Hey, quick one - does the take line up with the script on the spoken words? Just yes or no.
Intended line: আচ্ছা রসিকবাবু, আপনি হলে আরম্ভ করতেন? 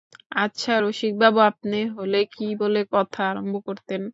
no